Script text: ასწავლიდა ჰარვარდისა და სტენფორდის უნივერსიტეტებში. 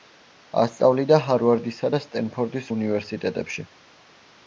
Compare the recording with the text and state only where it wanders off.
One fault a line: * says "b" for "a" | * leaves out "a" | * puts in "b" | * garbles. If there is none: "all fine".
all fine